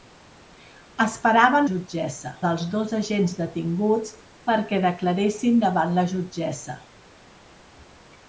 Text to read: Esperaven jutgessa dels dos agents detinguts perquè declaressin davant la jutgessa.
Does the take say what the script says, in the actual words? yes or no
yes